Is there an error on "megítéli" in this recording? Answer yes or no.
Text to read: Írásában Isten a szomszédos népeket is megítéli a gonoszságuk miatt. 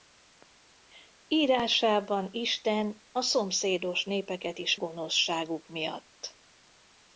yes